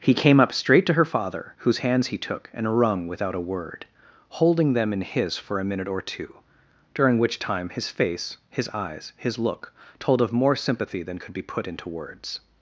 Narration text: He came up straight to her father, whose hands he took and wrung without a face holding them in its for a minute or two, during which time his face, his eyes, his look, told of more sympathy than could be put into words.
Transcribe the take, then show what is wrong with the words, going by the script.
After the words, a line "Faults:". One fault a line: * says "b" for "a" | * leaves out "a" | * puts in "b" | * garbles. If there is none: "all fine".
He came up straight to her father, whose hands he took and wrung without a word holding them in his for a minute or two, during which time his face, his eyes, his look, told of more sympathy than could be put into words.
Faults:
* says "word" for "face"
* says "his" for "its"